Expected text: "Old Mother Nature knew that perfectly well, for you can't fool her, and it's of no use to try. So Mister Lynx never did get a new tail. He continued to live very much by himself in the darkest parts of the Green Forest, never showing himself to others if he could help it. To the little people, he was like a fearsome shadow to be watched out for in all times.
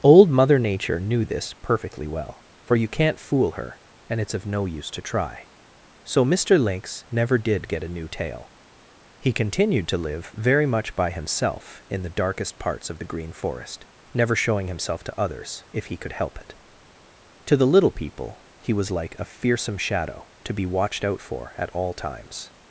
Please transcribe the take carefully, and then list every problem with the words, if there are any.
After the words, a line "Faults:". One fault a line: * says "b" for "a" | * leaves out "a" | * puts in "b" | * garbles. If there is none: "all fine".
"Old Mother Nature knew this perfectly well, for you can't fool her, and it's of no use to try. So Mister Lynx never did get a new tail. He continued to live very much by himself in the darkest parts of the Green Forest, never showing himself to others if he could help it. To the little people, he was like a fearsome shadow to be watched out for at all times.
Faults:
* says "this" for "that"
* says "at" for "in"